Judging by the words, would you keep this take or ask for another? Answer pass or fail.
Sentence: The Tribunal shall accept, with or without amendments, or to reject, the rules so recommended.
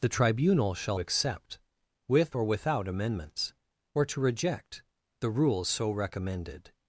pass